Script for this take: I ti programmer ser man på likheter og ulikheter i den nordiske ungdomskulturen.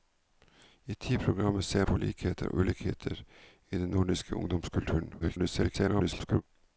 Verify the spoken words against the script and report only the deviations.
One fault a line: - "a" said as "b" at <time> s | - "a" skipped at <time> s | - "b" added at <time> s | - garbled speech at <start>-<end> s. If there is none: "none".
- "man" skipped at 1.9 s
- garbled speech at 5.2-6.4 s